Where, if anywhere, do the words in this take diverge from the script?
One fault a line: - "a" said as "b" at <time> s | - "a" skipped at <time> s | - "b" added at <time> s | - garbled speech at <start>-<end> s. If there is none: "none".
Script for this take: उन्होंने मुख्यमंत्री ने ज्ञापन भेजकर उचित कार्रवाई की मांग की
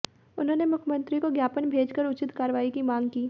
- "ने" said as "को" at 1.2 s